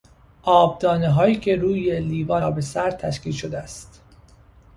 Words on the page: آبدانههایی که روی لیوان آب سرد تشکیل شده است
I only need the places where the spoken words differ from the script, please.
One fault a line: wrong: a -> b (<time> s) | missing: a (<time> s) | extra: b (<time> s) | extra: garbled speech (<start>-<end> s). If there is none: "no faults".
no faults